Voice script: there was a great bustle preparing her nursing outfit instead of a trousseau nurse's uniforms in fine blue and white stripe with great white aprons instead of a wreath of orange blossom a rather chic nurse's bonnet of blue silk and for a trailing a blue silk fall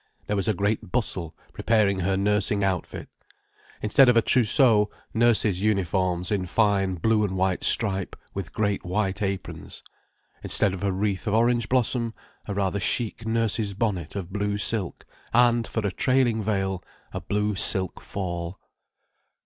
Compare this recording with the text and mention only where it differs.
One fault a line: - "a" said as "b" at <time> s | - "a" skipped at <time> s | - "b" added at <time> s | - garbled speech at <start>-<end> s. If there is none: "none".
- "veil" added at 16.4 s